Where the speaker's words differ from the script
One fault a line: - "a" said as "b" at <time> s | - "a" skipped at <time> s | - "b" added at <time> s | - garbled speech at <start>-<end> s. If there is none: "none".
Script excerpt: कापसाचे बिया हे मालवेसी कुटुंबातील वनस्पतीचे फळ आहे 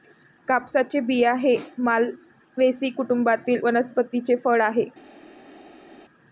none